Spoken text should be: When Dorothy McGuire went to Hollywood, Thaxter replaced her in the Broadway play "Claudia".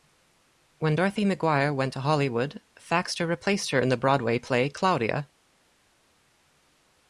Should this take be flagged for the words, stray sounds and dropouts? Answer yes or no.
no